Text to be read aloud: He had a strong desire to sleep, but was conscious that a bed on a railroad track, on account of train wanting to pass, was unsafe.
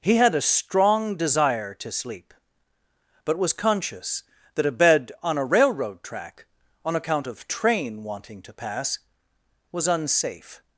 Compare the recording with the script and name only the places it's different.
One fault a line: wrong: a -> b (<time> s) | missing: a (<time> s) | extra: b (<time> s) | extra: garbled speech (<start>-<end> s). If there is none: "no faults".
no faults